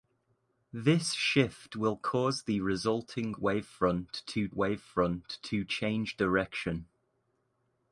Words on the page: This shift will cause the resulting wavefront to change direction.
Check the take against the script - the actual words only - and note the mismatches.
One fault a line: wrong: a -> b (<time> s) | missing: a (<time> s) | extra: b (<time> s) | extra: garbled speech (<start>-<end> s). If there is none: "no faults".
extra: wavefront to (4.5 s)